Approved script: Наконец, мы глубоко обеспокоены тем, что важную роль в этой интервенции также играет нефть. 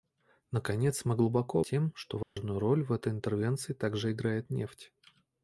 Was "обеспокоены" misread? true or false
true